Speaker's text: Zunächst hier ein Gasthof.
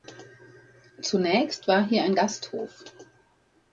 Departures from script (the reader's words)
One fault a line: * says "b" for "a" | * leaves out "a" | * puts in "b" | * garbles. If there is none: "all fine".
* puts in "war"